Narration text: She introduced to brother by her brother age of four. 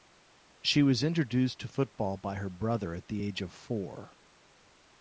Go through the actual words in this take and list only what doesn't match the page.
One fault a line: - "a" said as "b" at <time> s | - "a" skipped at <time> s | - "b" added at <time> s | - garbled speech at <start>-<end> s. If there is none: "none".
- "was" added at 0.8 s
- "brother" said as "football" at 1.7 s
- "at the" added at 3.0 s